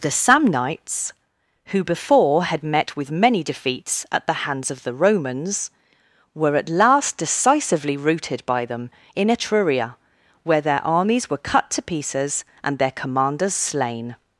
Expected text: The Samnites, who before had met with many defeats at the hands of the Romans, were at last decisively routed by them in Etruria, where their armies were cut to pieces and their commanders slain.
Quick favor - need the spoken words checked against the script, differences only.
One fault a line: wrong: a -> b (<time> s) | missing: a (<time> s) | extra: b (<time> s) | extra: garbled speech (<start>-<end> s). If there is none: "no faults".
no faults